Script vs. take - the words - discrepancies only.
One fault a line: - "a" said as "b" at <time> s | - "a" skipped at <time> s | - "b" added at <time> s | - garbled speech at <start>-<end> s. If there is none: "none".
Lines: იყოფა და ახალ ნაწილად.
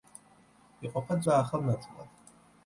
none